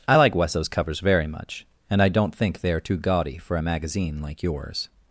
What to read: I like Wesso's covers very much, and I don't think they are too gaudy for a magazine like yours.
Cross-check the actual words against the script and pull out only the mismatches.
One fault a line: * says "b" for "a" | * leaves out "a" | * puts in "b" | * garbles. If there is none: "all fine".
all fine